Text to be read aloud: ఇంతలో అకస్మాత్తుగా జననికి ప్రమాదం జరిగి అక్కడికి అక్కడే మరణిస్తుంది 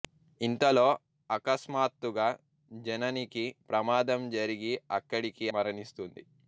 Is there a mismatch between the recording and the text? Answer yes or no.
yes